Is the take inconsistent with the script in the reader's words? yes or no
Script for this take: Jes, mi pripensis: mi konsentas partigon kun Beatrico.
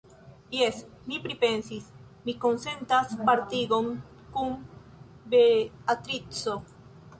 no